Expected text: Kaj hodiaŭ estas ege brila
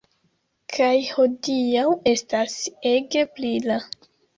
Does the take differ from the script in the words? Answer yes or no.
no